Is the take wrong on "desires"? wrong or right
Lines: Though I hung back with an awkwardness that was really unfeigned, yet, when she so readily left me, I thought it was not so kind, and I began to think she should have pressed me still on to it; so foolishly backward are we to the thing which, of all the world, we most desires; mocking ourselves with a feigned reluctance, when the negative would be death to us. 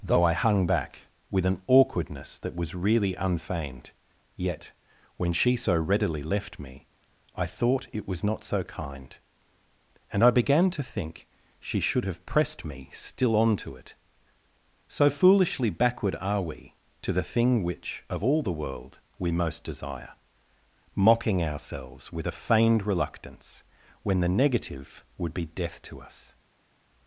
wrong